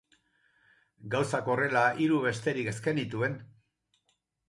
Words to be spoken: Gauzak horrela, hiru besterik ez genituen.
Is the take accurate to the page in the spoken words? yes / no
yes